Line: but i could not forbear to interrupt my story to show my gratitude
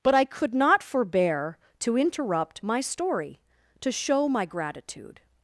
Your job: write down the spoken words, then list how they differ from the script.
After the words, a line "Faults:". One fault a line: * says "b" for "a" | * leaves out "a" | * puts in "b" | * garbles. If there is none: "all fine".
but i could not forbear to interrupt my story to show my gratitude
Faults:
all fine